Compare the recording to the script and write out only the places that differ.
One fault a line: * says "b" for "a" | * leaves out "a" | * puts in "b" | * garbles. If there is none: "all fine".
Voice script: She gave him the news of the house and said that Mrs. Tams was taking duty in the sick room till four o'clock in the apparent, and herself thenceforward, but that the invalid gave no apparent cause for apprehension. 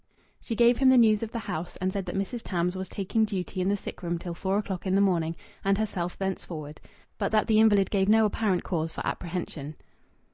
* says "morning" for "apparent"